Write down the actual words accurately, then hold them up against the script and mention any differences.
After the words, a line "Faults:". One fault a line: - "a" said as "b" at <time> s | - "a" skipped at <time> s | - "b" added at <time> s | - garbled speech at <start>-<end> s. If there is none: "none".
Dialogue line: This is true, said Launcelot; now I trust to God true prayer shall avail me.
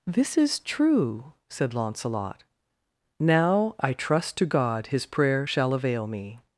This is true, said Launcelot; now I trust to God his prayer shall avail me.
Faults:
- "true" said as "his" at 4.9 s